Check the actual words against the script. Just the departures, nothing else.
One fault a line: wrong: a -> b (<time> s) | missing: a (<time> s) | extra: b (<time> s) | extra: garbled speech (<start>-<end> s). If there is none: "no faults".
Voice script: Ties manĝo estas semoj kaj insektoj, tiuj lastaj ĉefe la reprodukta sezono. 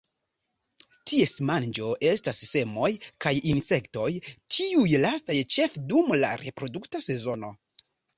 extra: dum (5.9 s)